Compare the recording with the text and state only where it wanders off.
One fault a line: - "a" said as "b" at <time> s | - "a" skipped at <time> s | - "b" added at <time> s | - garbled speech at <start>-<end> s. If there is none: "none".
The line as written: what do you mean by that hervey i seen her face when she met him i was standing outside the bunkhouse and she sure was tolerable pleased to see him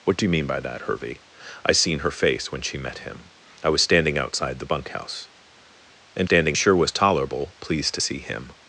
- "she" said as "standing" at 6.2 s